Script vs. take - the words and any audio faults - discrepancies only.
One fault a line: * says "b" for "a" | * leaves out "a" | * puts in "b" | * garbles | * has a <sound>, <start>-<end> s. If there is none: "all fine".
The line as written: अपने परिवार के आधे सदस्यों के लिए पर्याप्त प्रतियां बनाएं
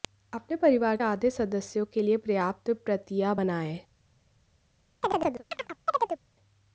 * leaves out "के"
* has a chirp, 5.0-6.2 s